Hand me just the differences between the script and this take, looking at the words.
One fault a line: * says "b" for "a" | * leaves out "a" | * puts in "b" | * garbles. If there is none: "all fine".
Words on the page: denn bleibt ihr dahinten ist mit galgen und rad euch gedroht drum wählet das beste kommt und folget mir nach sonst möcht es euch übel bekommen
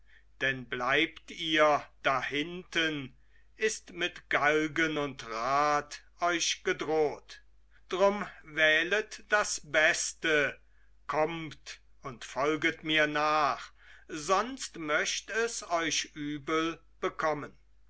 all fine